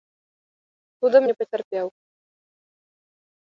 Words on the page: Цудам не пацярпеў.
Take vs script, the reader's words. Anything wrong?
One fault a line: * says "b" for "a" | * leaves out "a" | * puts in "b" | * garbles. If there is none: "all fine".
all fine